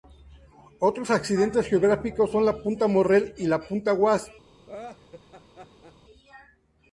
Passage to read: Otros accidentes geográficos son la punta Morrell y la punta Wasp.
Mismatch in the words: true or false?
false